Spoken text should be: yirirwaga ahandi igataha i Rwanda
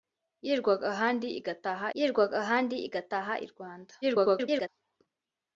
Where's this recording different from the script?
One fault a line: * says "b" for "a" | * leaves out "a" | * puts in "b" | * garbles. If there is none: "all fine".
* puts in "yirirwaga ahandi igataha"
* garbles